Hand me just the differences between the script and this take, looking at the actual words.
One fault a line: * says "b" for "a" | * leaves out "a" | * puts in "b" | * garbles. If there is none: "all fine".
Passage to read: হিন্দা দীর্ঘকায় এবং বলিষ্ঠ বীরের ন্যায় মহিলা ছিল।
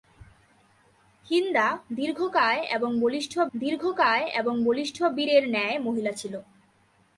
* puts in "দীর্ঘকায় এবং বলিষ্ঠ"